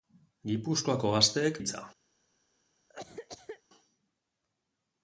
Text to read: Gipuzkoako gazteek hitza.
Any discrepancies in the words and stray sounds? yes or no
yes